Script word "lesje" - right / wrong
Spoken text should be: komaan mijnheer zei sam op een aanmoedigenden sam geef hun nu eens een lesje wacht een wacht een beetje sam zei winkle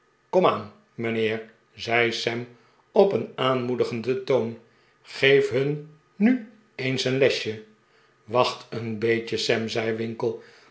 right